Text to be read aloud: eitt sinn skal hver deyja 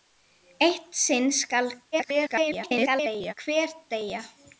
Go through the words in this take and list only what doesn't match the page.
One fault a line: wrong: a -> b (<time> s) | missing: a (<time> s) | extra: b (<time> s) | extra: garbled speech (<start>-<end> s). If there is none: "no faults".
extra: garbled speech (1.9-3.3 s)